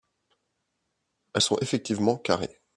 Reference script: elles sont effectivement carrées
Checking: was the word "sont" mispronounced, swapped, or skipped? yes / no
no